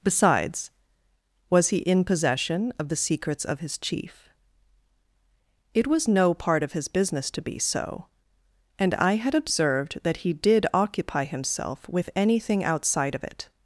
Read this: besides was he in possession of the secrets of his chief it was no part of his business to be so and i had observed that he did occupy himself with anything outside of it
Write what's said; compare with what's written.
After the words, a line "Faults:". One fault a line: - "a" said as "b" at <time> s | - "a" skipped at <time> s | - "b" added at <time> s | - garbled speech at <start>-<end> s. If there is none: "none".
besides was he in possession of the secrets of his chief it was no part of his business to be so and i had observed that he did occupy himself with anything outside of it
Faults:
none